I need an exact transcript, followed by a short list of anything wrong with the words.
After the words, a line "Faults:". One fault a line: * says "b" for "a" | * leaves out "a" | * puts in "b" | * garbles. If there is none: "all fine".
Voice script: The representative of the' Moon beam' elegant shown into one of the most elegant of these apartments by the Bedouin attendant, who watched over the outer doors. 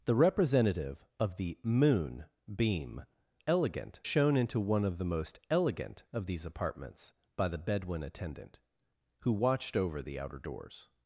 The representative of the' Moon beam' elegant shown into one of the most elegant of these apartments by the Bedouin attendant, who watched over the outer doors.
Faults:
all fine